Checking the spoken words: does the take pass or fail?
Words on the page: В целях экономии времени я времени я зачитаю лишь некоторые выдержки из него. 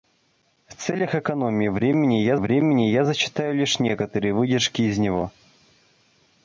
pass